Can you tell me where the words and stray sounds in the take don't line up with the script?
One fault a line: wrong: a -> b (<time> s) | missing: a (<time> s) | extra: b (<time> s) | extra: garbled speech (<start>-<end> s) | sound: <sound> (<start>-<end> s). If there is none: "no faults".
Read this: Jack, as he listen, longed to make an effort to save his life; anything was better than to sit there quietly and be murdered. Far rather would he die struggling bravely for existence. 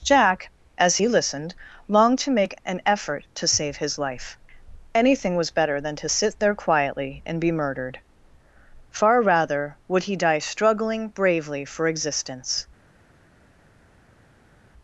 wrong: listen -> listened (1.1 s)